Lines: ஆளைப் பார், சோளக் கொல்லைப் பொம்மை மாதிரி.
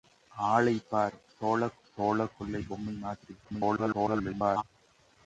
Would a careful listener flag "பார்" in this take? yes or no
no